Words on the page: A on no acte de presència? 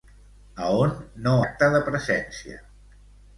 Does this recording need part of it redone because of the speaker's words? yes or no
no